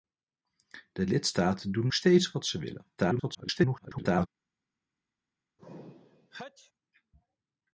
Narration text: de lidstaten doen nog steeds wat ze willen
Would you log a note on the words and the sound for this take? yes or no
yes